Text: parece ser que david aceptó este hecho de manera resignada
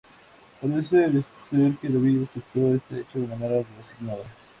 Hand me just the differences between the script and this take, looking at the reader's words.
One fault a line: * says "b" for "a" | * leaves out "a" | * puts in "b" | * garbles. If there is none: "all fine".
all fine